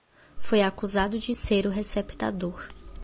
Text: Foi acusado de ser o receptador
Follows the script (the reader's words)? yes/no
yes